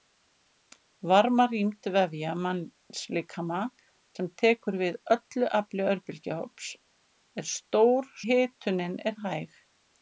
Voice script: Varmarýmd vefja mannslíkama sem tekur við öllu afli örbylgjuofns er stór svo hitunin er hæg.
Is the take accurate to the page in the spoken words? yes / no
no